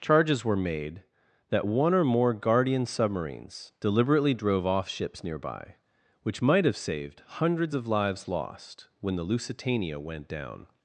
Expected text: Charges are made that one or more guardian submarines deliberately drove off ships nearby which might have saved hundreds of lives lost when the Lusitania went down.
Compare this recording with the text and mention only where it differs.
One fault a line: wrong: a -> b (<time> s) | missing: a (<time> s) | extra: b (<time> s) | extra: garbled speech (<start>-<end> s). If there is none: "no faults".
wrong: are -> were (0.4 s)